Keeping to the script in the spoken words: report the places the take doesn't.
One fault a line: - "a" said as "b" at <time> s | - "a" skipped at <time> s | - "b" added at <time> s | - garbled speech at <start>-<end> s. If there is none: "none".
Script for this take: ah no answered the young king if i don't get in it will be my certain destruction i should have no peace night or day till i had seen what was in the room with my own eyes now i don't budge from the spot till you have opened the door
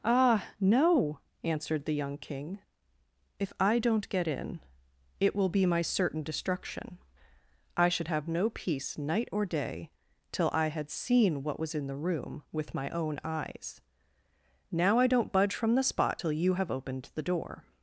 none